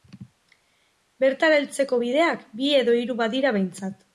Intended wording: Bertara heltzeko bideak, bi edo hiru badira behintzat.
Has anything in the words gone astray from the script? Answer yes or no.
no